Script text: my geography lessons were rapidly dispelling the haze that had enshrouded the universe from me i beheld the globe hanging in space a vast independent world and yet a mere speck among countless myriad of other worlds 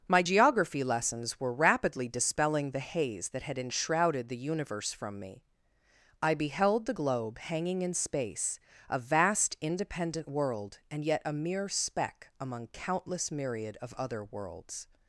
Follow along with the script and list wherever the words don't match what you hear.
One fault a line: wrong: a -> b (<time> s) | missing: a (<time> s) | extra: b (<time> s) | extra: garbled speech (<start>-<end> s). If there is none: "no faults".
no faults